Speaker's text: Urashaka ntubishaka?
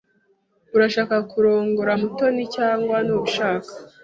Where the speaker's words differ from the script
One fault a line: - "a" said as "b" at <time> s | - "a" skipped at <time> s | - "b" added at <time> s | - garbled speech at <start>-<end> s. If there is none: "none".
- "kurongora Mutoni cyangwa" added at 1.3 s